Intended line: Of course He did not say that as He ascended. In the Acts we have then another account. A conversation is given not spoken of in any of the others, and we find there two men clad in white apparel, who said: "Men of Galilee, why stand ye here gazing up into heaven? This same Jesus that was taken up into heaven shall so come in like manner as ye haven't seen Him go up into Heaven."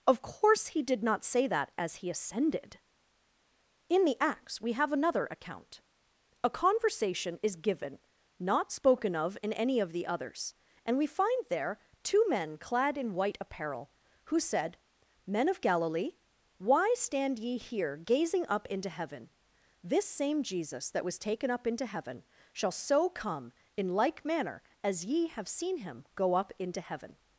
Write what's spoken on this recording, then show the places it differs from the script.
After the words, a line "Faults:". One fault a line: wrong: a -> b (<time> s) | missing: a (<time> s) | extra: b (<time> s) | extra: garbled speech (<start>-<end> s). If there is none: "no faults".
Of course He did not say that as He ascended. In the Acts we have another account. A conversation is given not spoken of in any of the others, and we find there two men clad in white apparel, who said: "Men of Galilee, why stand ye here gazing up into heaven? This same Jesus that was taken up into heaven shall so come in like manner as ye have seen Him go up into Heaven."
Faults:
missing: then (4.9 s)
wrong: haven't -> have (25.3 s)